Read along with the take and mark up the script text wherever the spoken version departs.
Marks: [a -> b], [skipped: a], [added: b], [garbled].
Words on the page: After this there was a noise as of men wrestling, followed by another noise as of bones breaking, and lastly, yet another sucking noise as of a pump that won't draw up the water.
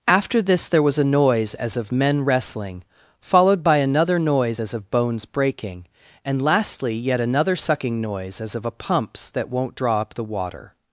After this there was a noise as of men wrestling, followed by another noise as of bones breaking, and lastly, yet another sucking noise as of a [pump -> pumps] that won't draw up the water.